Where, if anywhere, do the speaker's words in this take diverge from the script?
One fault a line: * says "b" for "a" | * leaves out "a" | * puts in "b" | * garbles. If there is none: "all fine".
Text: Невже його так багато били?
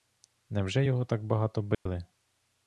all fine